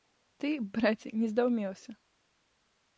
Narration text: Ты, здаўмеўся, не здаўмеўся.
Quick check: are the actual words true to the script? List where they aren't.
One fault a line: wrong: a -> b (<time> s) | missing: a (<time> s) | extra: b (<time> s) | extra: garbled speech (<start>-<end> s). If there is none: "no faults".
wrong: здаўмеўся -> браце (0.8 s)